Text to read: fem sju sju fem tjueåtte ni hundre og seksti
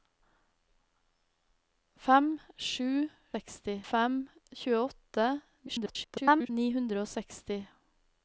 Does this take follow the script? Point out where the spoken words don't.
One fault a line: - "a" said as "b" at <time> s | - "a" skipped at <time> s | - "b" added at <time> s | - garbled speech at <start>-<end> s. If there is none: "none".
- "sju" said as "seksti" at 3.3 s
- garbled speech at 5.7-6.5 s